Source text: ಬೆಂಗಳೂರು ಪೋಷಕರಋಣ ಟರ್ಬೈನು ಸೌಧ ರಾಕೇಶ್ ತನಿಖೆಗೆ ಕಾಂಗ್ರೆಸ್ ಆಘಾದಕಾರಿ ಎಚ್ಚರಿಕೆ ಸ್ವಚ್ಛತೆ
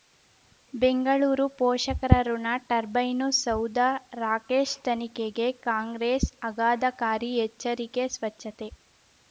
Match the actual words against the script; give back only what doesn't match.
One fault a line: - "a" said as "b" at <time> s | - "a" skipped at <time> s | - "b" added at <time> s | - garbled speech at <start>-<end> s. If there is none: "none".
none